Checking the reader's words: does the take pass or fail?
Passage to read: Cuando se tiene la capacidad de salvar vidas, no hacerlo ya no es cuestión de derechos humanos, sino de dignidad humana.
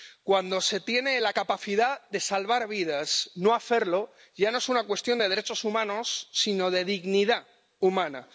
fail